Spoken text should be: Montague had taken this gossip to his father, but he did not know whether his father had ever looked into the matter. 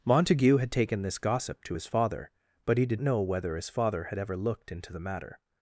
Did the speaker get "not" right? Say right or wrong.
wrong